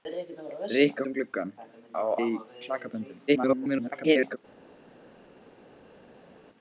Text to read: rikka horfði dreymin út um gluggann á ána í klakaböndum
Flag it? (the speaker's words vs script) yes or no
yes